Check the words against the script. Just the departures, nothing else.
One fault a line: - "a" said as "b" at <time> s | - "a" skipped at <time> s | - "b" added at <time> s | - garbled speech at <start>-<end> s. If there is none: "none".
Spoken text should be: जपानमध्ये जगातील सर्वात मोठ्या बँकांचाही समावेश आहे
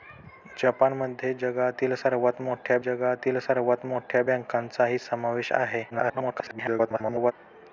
- "जगातील सर्वात मोठ्या" added at 2.8 s
- garbled speech at 5.9-7.3 s